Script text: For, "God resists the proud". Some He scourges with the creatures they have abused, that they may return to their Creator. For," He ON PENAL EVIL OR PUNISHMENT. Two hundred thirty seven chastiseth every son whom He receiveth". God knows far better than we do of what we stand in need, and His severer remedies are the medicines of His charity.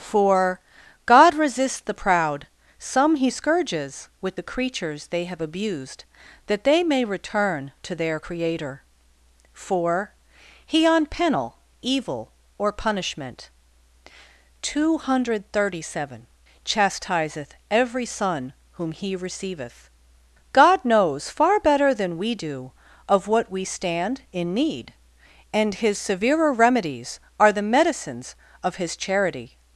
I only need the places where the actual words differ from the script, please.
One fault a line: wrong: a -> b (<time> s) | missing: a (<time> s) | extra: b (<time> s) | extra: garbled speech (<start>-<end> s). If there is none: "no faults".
no faults